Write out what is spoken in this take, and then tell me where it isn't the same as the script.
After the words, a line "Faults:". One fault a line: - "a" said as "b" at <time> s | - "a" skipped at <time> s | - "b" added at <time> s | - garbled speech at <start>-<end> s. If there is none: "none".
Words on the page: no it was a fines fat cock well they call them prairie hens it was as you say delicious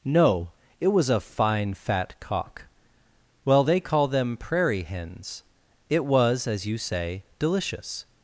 no it was a fine fat cock well they call them prairie hens it was as you say delicious
Faults:
- "fines" said as "fine" at 1.2 s